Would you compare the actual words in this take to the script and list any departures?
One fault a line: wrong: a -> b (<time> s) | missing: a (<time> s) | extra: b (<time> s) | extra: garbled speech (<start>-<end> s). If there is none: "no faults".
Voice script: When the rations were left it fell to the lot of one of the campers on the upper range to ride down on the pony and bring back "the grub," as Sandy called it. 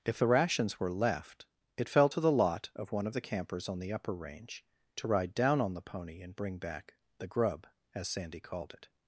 wrong: When -> If (0.0 s)